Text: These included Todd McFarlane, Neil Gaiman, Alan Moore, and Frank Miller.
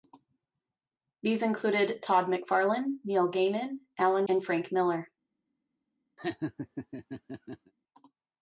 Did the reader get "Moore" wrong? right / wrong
wrong